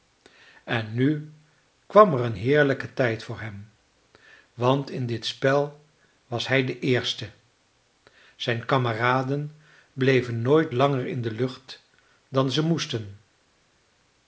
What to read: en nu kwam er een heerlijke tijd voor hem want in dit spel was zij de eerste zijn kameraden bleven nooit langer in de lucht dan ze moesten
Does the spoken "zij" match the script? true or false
false